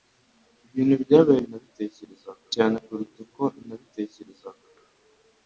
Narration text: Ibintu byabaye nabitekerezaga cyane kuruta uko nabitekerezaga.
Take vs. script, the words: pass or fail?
pass